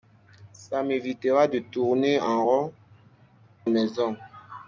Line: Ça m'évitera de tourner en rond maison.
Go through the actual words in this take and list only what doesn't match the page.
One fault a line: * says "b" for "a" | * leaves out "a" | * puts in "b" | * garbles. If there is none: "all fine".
all fine